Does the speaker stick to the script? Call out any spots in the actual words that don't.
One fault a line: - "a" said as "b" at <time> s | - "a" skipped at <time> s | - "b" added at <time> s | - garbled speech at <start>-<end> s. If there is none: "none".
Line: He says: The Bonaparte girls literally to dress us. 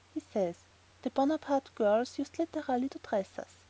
- "used" added at 2.2 s